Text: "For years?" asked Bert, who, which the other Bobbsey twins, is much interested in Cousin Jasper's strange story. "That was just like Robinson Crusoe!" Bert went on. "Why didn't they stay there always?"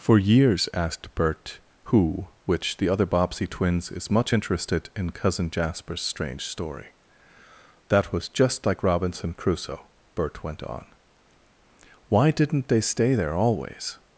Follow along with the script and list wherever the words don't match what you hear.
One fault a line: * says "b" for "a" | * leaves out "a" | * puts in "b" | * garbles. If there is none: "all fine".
all fine